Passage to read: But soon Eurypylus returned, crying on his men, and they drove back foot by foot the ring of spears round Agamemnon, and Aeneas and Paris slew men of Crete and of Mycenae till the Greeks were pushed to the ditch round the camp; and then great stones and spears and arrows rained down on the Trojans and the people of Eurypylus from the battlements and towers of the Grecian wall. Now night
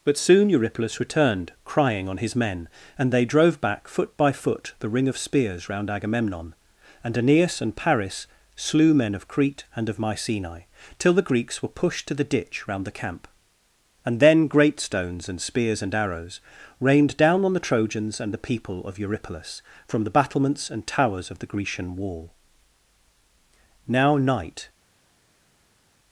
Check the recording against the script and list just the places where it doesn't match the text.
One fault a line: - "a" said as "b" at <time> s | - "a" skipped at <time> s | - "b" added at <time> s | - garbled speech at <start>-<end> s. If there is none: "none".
none